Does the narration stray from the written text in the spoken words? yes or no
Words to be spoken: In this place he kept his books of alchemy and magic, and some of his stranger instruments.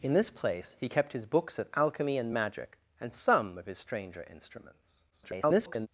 yes